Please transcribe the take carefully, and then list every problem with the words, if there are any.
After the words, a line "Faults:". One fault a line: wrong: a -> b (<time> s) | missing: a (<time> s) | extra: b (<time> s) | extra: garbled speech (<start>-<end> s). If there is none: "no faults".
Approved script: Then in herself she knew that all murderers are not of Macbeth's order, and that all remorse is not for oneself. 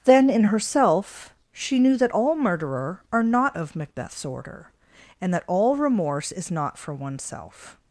Then in herself she knew that all murderer are not of Macbeth's order, and that all remorse is not for oneself.
Faults:
wrong: murderers -> murderer (2.4 s)